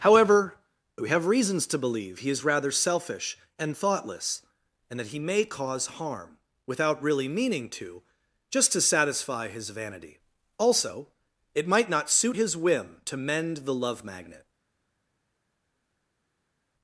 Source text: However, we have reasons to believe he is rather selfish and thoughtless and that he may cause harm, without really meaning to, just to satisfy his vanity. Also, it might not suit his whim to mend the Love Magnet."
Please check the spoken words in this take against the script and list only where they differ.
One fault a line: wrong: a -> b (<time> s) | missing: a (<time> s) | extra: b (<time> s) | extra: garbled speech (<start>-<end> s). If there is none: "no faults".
no faults